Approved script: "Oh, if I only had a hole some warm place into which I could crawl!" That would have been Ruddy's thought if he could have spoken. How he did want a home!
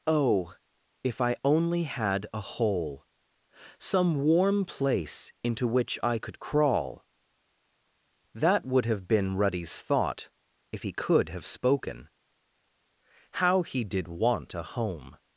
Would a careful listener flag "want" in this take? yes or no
no